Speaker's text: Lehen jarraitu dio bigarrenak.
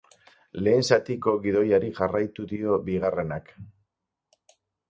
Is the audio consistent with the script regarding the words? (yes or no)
no